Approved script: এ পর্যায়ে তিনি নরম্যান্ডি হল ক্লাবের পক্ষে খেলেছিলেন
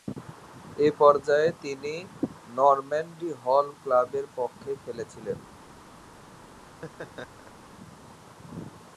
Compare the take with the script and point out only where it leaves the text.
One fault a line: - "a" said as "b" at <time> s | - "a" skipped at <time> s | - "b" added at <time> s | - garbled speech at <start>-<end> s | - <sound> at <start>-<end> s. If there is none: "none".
- laugh at 6.6-7.7 s